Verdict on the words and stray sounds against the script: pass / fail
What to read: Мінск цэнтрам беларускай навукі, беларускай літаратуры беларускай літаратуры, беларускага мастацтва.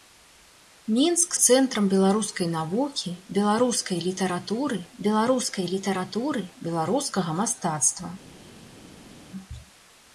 pass